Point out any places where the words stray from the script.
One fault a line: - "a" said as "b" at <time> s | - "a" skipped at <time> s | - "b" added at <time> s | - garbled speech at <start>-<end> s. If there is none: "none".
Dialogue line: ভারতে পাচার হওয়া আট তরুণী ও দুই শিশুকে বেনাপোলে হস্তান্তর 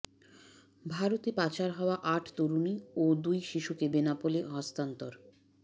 none